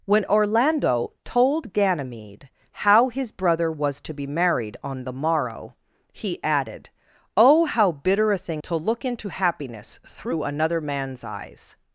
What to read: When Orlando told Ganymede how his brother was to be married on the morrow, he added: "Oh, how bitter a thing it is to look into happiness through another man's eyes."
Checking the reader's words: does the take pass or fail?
fail